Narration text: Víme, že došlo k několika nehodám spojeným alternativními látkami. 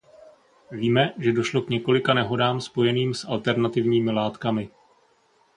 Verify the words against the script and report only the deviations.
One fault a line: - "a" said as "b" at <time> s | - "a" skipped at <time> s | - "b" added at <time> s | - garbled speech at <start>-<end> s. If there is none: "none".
- "s" added at 3.1 s